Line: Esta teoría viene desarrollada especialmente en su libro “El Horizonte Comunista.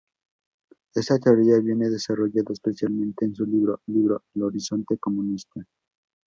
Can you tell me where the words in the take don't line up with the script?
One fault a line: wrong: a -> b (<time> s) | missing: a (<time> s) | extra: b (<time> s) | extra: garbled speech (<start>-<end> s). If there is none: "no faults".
extra: libro (3.9 s)